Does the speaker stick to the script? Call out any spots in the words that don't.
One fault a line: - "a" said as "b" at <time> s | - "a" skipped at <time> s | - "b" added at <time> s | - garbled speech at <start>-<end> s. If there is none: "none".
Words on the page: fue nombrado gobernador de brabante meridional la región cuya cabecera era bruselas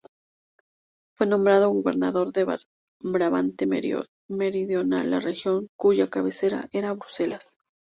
none